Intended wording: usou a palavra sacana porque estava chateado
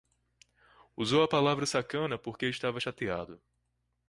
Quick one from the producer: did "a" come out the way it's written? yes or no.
yes